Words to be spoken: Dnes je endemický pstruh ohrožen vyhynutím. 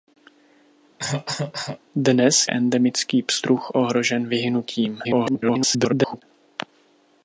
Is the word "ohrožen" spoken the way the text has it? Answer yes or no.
yes